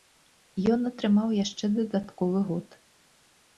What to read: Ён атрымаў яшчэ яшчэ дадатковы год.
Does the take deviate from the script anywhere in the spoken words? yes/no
yes